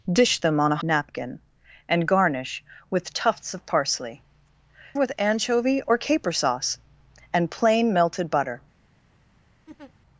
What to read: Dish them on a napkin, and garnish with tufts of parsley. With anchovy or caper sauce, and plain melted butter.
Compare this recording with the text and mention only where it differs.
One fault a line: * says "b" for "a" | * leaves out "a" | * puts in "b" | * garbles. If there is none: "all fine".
all fine